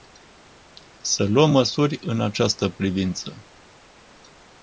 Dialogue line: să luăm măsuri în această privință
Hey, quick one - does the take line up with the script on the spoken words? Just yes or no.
yes